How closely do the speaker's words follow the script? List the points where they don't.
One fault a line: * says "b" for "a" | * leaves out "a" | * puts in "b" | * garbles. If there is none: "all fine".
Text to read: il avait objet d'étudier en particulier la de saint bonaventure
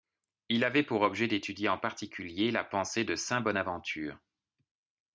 * puts in "pour"
* puts in "pensée"